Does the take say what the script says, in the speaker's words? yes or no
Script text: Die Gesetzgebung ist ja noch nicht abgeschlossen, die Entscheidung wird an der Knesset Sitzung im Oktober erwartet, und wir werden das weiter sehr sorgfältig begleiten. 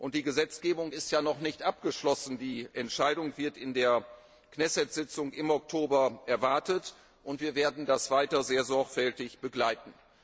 no